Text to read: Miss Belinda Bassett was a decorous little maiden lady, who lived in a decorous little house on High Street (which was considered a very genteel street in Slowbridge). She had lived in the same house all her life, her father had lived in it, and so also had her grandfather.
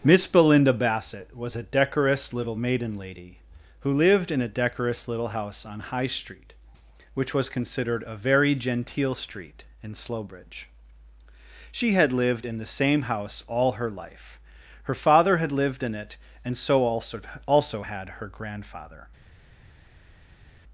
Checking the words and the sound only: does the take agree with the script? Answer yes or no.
no